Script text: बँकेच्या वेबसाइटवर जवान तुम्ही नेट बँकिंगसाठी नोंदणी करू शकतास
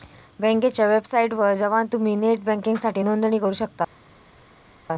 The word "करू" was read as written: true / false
true